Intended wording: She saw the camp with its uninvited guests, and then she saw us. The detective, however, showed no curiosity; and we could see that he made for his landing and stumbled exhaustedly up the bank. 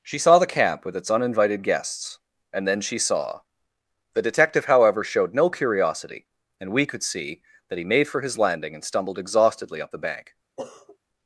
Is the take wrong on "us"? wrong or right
wrong